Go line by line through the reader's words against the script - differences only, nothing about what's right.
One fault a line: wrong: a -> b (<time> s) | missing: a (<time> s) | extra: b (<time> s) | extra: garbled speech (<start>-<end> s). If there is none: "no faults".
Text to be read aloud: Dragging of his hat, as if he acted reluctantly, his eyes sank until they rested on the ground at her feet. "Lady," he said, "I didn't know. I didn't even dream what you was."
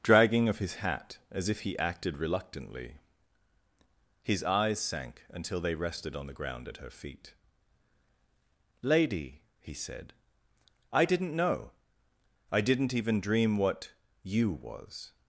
no faults